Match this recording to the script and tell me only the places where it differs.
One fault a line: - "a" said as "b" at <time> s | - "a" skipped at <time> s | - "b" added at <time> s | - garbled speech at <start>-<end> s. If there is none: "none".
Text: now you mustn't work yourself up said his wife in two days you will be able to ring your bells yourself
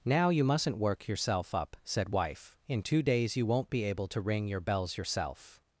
- "his" skipped at 2.1 s
- "will" said as "won't" at 3.5 s